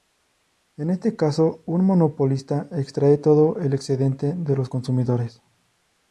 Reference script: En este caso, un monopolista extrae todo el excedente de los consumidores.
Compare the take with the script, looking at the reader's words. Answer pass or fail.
pass